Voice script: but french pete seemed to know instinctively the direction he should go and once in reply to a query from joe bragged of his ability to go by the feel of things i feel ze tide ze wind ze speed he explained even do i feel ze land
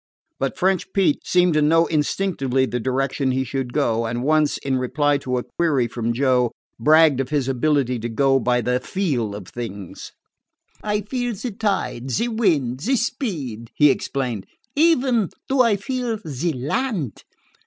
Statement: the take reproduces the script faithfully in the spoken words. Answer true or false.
true